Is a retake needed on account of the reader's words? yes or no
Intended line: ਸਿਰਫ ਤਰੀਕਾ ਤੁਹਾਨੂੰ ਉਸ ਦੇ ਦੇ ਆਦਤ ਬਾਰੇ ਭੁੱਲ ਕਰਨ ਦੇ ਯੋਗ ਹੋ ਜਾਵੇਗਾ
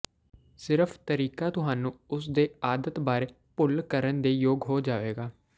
yes